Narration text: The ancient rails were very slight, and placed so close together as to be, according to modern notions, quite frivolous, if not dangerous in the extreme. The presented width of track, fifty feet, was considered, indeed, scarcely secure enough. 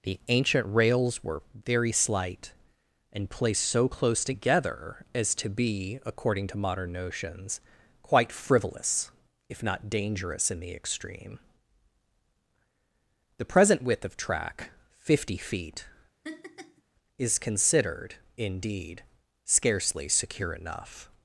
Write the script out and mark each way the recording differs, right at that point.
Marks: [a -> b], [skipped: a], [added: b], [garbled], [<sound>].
The ancient rails were very slight, and placed so close together as to be, according to modern notions, quite frivolous, if not dangerous in the extreme. The [presented -> present] width of track, fifty feet, [laugh] [was -> is] considered, indeed, scarcely secure enough.